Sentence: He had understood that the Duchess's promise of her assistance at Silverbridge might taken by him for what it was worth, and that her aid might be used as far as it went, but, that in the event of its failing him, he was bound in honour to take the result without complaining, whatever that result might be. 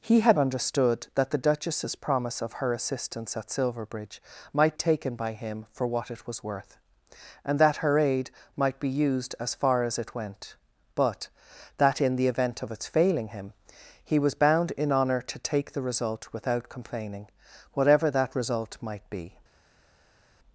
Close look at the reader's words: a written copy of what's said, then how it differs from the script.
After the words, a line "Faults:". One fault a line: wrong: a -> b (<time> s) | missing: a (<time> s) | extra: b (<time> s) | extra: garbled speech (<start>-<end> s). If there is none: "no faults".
He had understood that the Duchess's promise of her assistance at Silverbridge might taken by him for what it was worth, and that her aid might be used as far as it went, but, that in the event of its failing him, he was bound in honour to take the result without complaining, whatever that result might be.
Faults:
no faults